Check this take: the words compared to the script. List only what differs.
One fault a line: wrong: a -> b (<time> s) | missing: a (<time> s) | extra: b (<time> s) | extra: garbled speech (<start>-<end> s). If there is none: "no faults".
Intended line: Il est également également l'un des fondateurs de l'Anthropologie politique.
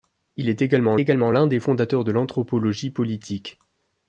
no faults